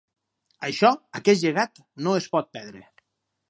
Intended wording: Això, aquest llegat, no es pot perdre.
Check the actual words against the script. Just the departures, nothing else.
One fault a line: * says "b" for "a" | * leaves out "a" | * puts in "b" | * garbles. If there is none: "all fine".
all fine